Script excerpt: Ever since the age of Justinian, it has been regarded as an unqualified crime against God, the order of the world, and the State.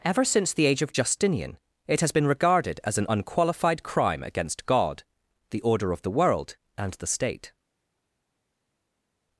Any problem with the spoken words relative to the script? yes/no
no